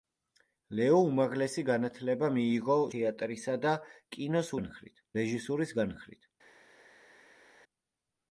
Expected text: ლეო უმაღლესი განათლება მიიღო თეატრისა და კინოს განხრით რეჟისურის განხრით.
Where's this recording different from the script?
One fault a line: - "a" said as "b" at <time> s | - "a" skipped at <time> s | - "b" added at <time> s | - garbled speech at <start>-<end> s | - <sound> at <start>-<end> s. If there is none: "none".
none